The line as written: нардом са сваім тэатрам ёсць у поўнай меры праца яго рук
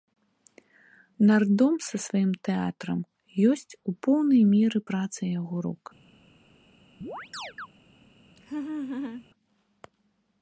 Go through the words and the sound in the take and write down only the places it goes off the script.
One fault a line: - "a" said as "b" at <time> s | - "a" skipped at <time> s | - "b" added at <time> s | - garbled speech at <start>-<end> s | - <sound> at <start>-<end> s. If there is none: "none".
- chirp at 7.0-7.7 s
- laugh at 8.4-9.3 s